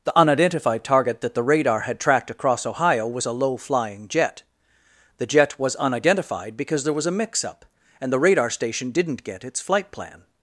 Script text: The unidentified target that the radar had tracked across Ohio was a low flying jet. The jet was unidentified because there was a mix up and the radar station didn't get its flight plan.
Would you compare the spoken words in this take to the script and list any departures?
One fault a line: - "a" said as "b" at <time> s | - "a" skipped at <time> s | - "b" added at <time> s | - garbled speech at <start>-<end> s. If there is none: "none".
none